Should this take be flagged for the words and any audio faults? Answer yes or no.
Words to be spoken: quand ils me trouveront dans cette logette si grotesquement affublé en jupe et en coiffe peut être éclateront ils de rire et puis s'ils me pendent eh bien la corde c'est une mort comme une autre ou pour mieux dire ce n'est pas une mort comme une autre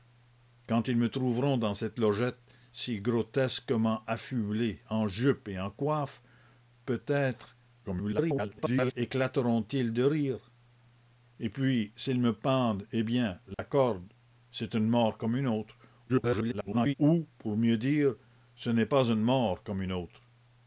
yes